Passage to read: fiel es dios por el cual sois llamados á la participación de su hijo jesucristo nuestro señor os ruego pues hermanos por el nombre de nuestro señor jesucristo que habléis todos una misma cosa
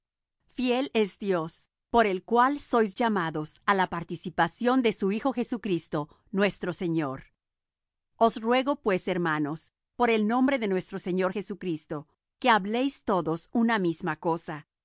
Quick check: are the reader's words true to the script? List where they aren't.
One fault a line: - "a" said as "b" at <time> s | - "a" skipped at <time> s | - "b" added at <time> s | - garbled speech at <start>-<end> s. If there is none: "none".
none